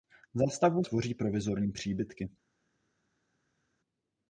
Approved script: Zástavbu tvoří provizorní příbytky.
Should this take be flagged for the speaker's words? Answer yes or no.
no